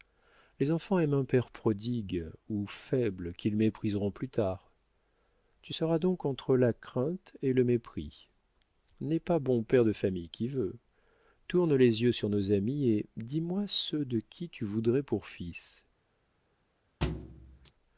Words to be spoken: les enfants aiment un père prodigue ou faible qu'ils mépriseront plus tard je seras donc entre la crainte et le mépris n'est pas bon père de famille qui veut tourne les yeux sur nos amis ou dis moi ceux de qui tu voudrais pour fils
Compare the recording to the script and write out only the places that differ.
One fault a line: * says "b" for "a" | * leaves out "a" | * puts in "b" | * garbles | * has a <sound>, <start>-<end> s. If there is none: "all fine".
* says "tu" for "je"
* says "et" for "ou"
* has a thud, 17.0-17.7 s